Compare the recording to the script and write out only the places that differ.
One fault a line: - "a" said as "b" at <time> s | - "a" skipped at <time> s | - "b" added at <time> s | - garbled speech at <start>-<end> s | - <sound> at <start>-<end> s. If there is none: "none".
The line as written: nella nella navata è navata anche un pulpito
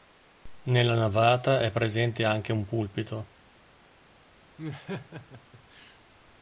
- "nella" skipped at 0.9 s
- "navata" said as "presente" at 1.7 s
- laugh at 4.6-6.0 s